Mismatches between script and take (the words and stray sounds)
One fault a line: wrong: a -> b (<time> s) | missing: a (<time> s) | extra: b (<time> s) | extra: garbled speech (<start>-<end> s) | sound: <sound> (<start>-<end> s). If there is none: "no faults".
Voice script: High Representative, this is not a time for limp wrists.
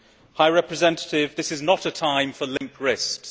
sound: dropout (2.6-2.6 s)